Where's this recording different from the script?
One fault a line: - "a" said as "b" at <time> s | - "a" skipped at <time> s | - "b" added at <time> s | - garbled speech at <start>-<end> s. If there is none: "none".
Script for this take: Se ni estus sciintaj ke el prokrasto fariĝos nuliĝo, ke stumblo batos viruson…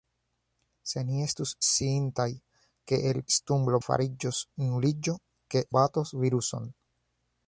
- "prokrasto" said as "stumblo" at 3.4 s
- "stumblo" skipped at 5.6 s